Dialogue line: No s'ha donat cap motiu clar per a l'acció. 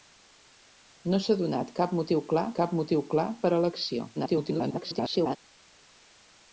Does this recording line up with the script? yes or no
no